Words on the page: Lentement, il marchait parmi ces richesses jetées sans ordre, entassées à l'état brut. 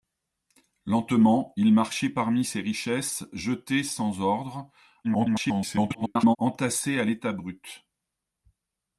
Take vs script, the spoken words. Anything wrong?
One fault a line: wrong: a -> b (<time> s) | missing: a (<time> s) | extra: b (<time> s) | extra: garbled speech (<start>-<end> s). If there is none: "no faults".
extra: garbled speech (5.0-6.4 s)